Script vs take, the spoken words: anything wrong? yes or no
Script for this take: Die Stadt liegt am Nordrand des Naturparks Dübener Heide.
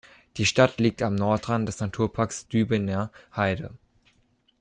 no